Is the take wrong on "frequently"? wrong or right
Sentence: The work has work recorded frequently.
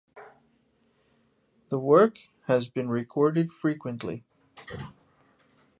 right